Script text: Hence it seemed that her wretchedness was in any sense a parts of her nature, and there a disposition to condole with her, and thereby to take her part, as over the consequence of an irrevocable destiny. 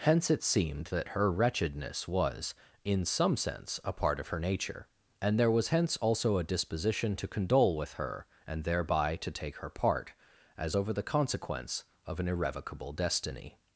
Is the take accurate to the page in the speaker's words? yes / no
no